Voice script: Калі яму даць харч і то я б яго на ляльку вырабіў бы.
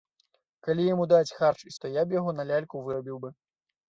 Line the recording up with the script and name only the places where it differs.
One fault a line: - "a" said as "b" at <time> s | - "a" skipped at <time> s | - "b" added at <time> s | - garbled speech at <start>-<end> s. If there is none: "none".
none